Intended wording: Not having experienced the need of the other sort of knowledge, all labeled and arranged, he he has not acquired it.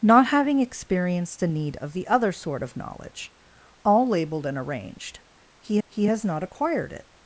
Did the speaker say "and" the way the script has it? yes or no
yes